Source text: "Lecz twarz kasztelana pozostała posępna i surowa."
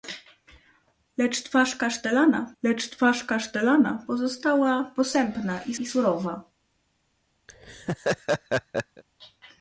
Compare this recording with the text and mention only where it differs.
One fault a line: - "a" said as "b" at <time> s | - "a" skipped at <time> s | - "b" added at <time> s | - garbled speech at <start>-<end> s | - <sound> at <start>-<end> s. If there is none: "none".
- "lecz twarz kasztelana" added at 2.6 s
- "i" added at 5.7 s
- laugh at 7.5-9.0 s